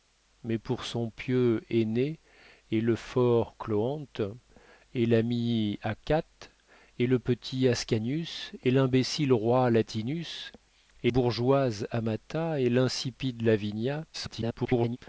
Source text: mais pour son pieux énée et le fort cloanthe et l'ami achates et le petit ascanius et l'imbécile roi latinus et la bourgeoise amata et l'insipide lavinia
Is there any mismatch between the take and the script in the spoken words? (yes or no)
yes